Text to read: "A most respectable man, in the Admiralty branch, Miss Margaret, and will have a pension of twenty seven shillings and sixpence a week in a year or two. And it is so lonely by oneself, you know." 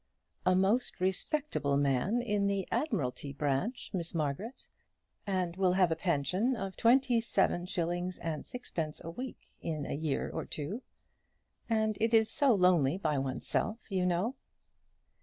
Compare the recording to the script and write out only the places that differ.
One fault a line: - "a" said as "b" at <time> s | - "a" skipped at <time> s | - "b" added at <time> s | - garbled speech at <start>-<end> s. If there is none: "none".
none